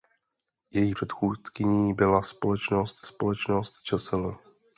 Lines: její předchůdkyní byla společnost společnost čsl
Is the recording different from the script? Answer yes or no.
no